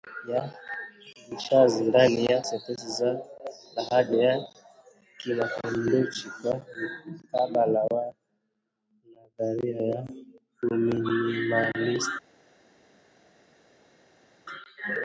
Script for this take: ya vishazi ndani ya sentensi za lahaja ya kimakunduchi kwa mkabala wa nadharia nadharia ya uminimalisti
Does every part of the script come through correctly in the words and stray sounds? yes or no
no